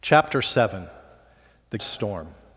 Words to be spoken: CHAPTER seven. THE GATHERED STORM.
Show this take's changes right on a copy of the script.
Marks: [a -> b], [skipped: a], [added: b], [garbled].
CHAPTER seven. THE [skipped: GATHERED] STORM.